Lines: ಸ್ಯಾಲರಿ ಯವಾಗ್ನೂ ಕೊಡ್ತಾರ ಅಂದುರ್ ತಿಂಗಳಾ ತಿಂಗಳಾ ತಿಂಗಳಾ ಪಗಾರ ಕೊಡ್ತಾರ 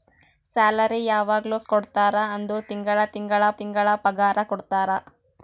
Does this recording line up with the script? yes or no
yes